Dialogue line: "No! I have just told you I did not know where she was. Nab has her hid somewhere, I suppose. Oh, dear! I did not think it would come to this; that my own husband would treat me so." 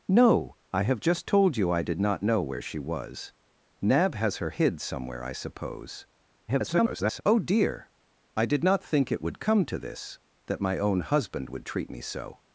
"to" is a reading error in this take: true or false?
false